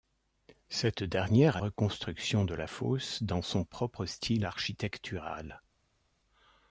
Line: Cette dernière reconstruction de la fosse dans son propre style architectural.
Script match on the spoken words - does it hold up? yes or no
yes